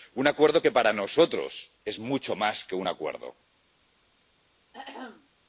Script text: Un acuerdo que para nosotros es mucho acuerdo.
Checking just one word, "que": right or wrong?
right